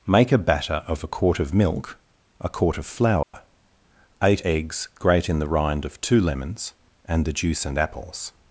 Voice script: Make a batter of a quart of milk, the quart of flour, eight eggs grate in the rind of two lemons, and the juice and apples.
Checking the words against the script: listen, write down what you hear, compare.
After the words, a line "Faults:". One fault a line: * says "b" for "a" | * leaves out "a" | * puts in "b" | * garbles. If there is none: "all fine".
Make a batter of a quart of milk, a quart of flour, eight eggs grate in the rind of two lemons, and the juice and apples.
Faults:
* says "a" for "the"